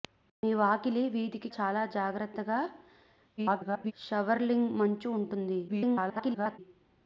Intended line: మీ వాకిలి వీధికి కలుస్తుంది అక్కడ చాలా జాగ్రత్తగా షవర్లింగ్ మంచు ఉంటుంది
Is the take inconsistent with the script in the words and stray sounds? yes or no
yes